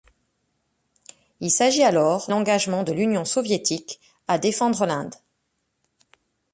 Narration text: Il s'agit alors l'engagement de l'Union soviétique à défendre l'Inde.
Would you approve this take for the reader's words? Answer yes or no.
yes